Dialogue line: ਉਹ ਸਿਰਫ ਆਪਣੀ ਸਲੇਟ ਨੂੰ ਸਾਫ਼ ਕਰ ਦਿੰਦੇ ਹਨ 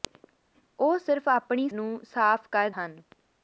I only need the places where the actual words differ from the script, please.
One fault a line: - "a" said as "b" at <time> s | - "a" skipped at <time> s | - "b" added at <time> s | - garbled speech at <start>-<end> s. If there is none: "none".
- "ਸਲੇਟ" skipped at 1.7 s
- "ਦਿੰਦੇ" skipped at 2.7 s